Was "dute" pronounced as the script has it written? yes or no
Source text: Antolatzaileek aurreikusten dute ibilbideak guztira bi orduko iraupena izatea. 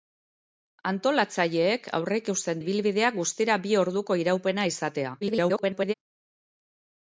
no